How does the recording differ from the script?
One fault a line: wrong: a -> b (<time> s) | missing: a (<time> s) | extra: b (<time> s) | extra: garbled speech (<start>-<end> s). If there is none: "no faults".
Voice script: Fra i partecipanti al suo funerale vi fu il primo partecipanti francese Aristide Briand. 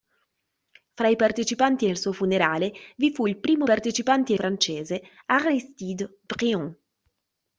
no faults